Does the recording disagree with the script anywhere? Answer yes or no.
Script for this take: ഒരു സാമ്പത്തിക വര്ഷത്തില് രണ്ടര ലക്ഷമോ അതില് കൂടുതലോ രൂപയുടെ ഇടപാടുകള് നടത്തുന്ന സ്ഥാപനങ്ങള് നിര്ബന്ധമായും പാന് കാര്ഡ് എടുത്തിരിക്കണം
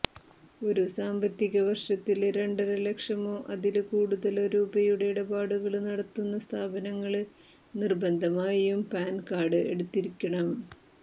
no